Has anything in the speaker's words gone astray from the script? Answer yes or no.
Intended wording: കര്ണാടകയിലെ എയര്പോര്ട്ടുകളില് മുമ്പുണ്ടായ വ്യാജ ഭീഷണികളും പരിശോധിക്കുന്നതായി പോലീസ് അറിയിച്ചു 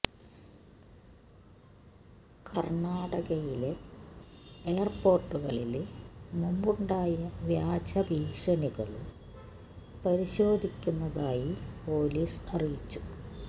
no